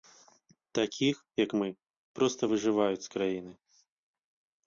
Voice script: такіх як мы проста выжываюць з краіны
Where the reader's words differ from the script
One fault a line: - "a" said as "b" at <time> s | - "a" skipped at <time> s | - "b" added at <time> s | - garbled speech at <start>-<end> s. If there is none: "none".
none